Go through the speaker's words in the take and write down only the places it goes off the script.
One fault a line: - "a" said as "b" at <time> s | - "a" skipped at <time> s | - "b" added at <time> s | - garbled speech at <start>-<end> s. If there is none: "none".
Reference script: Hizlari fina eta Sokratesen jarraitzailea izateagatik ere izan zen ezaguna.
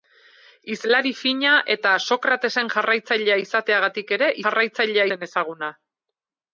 - "izan" said as "jarraitzailea" at 4.5 s